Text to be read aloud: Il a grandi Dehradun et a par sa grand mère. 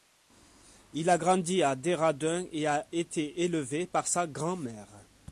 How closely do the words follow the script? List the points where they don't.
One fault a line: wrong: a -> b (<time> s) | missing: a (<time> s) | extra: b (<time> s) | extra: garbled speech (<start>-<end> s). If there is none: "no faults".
extra: à (1.6 s)
extra: été élevé (2.9 s)